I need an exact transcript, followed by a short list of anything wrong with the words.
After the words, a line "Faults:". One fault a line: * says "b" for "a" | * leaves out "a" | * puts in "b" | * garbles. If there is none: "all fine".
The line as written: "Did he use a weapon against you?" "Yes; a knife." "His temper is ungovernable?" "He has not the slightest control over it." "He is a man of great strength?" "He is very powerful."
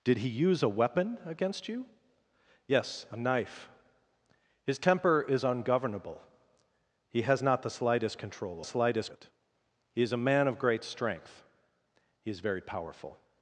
"Did he use a weapon against you?" "Yes; a knife." "His temper is ungovernable?" "He has not the slightest control slightest it." "He is a man of great strength?" "He is very powerful."
Faults:
* says "slightest" for "over"